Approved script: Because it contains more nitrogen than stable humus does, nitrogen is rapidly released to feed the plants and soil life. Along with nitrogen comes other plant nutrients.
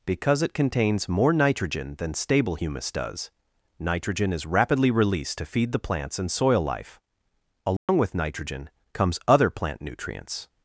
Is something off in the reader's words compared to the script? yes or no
no